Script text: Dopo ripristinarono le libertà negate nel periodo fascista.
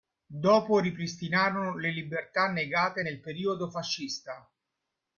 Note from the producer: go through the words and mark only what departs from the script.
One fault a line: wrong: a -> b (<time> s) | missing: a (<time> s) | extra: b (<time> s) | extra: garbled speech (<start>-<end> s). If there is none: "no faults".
no faults